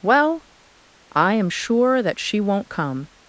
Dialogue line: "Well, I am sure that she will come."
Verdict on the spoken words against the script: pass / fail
fail